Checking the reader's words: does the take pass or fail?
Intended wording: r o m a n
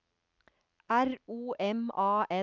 pass